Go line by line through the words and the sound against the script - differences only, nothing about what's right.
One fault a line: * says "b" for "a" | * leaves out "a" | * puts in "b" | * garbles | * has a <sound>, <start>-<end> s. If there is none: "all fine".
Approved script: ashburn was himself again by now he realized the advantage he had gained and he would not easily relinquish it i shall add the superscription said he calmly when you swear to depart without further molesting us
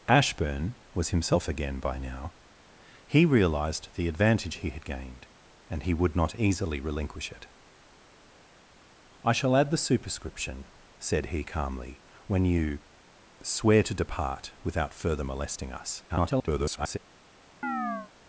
* garbles
* has a chirp, 17.6-18.1 s